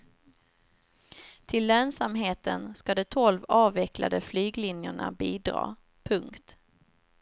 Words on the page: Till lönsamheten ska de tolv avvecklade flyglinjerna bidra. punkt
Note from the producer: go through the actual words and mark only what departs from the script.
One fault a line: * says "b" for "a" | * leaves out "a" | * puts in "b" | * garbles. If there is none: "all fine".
all fine